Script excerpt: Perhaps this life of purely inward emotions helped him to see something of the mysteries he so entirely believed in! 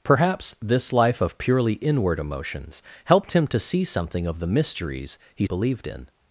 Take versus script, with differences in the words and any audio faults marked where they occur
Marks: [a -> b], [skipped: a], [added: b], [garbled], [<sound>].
Perhaps this life of purely inward emotions helped him to see something of the mysteries he [skipped: so entirely] believed in!